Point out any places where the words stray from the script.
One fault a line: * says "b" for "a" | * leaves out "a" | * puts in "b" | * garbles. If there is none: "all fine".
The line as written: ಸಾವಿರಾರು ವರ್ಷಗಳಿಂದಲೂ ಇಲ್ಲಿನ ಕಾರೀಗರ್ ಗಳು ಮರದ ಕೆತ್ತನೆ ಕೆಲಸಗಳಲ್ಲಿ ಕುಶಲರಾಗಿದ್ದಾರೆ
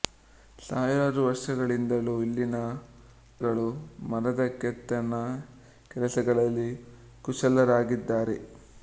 * leaves out "ಕಾರೀಗರ್"